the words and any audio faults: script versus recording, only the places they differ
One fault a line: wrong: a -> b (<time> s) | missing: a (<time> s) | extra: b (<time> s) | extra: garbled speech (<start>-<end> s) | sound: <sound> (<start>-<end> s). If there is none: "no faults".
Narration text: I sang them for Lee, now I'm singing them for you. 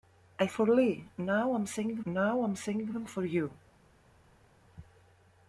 wrong: sang them for Lee -> for Lee now I'm singing (0.5 s)